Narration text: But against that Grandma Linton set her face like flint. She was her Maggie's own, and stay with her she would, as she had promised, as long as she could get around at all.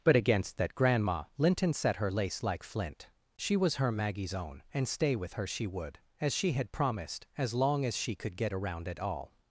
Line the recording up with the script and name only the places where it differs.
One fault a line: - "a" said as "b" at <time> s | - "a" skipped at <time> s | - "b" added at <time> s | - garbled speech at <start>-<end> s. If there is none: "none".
- "face" said as "lace" at 2.1 s